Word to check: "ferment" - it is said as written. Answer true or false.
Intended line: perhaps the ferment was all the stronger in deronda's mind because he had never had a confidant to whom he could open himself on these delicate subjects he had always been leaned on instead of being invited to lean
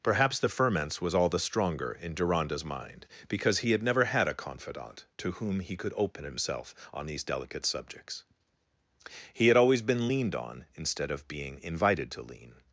false